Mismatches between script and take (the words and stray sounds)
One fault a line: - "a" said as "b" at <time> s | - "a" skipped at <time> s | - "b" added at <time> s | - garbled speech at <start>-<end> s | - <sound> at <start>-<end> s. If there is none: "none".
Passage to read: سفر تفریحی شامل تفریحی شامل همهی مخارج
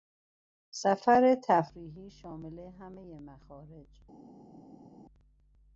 - "تفریحی شامل" skipped at 2.6 s